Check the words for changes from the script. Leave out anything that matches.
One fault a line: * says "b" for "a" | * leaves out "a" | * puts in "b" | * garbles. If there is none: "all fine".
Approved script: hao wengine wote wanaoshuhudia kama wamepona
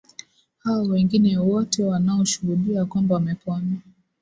* says "kwamba" for "kama"